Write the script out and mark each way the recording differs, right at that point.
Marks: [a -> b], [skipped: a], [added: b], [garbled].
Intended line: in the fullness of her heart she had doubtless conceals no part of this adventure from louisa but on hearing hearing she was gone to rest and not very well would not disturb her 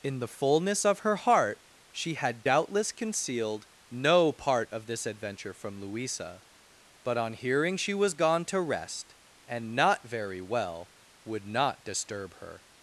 in the fullness of her heart she had doubtless [conceals -> concealed] no part of this adventure from louisa but on hearing [skipped: hearing] she was gone to rest and not very well would not disturb her